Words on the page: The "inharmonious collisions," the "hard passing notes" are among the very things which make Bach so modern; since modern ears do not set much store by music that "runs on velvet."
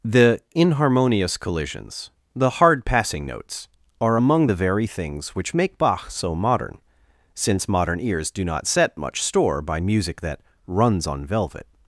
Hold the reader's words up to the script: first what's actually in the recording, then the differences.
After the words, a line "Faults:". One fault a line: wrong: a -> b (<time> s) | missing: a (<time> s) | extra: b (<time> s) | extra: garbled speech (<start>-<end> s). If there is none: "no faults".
The "inharmonious collisions," the "hard passing notes" are among the very things which make Bach so modern; since modern ears do not set much store by music that "runs on velvet."
Faults:
no faults